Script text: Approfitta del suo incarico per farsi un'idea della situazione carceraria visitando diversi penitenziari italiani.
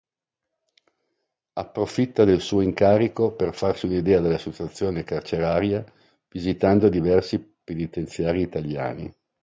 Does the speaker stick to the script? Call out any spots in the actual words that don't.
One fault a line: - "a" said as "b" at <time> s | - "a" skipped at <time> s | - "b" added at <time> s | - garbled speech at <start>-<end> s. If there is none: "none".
none